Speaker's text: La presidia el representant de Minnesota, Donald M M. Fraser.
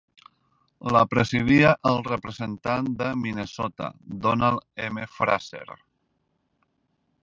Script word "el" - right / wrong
right